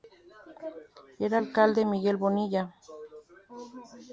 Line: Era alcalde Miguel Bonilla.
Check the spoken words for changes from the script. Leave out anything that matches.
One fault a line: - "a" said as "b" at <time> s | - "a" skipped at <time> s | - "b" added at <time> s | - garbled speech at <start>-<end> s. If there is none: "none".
none